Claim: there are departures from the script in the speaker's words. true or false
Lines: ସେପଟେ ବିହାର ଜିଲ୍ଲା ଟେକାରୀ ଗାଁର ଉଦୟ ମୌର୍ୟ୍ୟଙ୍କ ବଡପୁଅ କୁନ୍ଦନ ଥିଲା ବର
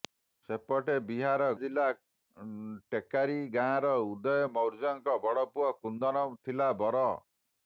false